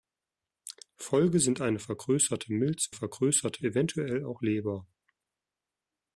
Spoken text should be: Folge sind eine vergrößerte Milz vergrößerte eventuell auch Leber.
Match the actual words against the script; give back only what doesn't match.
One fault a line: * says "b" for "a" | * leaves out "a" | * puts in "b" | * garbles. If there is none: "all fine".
all fine